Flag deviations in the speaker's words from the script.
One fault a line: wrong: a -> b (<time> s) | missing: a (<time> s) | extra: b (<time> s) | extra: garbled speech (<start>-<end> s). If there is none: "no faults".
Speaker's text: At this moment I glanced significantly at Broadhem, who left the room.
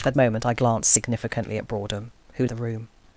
missing: this (0.1 s)
missing: left (2.4 s)